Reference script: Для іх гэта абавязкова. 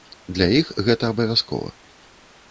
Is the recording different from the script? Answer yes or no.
no